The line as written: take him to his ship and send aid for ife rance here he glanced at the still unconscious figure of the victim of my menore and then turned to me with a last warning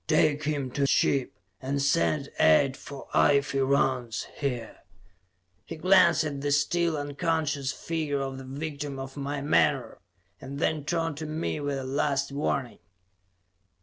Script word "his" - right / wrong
wrong